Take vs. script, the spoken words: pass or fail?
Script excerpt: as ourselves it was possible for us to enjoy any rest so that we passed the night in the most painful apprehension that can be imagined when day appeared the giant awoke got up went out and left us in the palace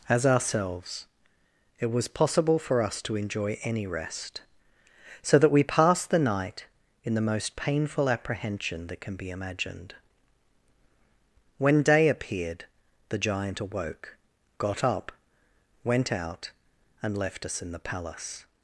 pass